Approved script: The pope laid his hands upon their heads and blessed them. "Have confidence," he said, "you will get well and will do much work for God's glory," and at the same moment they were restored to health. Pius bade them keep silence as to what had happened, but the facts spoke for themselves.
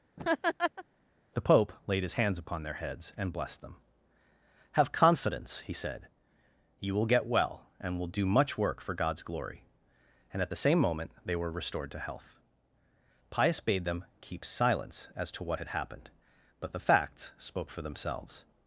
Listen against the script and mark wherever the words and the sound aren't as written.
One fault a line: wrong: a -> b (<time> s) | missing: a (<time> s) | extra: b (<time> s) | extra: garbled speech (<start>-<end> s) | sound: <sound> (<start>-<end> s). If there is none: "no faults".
sound: laugh (0.2-0.8 s)